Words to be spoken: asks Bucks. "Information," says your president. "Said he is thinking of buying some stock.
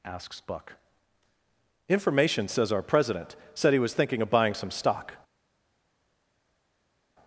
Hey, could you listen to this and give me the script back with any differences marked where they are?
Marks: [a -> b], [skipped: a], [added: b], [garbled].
asks [Bucks. -> Buck] "Information," says [your -> our] president. "Said he [is -> was] thinking of buying some stock.